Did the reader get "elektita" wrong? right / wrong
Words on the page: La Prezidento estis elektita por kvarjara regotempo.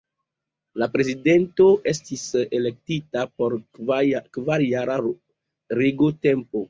right